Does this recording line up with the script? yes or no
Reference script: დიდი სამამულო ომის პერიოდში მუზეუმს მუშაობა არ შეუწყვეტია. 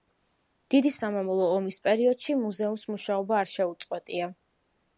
yes